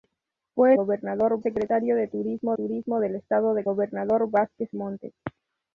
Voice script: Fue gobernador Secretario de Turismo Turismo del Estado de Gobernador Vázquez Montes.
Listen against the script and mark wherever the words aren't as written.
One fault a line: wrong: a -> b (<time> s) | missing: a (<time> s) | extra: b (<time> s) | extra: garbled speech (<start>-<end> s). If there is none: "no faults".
no faults